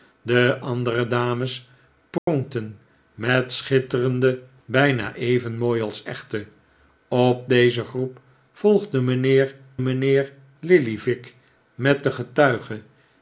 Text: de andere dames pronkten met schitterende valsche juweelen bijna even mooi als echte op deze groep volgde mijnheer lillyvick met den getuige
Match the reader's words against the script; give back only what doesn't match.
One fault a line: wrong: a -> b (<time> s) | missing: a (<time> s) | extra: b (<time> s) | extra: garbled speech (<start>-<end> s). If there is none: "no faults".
missing: valsche juweelen (4.4 s)
extra: mijnheer (9.8 s)